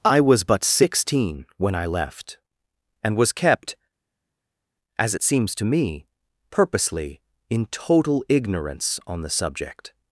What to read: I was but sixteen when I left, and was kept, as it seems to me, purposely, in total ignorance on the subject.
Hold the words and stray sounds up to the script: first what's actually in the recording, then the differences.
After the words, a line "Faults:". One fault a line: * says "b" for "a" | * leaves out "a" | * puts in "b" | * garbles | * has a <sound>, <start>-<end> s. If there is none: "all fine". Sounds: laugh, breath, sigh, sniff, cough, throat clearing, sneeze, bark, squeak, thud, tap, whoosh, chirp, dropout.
I was but sixteen when I left, and was kept, as it seems to me, purposely, in total ignorance on the subject.
Faults:
all fine